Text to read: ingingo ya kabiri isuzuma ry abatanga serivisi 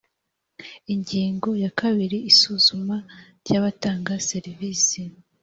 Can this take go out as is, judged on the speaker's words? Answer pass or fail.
pass